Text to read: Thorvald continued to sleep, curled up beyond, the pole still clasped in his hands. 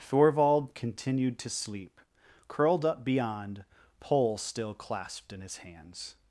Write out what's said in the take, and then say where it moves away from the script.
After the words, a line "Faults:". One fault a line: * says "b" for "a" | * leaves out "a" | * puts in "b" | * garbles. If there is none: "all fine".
Thorvald continued to sleep, curled up beyond, pole still clasped in his hands.
Faults:
* leaves out "the"